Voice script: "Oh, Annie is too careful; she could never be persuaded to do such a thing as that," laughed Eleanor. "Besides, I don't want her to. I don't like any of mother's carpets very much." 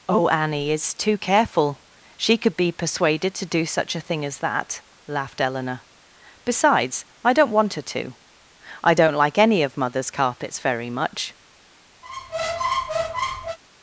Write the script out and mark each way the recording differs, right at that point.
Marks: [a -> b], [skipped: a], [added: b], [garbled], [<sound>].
"Oh, Annie is too careful; she could [skipped: never] be persuaded to do such a thing as that," laughed Eleanor. "Besides, I don't want her to. I don't like any of mother's carpets very much." [squeak]